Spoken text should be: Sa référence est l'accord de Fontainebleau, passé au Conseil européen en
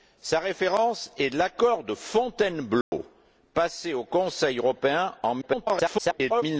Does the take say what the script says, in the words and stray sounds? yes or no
no